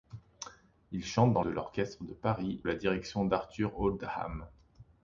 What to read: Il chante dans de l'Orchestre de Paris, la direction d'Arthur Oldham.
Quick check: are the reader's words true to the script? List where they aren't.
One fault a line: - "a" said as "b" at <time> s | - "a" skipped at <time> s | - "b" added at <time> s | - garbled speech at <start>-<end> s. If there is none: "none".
none